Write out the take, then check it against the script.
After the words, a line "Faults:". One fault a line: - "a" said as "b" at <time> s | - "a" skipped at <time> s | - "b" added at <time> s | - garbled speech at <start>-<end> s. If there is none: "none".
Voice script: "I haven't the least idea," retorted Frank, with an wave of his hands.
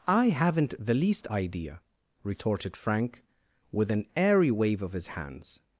"I haven't the least idea," retorted Frank, with an airy wave of his hands.
Faults:
- "airy" added at 4.1 s